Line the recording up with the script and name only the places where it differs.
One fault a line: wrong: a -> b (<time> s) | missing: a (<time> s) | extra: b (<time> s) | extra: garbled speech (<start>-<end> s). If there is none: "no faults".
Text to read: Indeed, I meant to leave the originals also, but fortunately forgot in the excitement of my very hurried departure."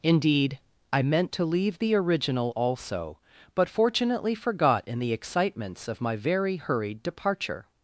wrong: originals -> original (1.9 s)
wrong: excitement -> excitements (5.1 s)